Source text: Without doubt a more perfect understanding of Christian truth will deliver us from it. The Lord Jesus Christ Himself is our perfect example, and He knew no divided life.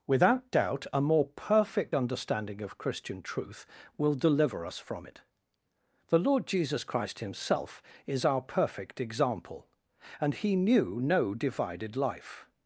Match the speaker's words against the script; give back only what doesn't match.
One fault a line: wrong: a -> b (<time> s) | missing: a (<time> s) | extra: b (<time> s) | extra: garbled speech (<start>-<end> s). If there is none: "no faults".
no faults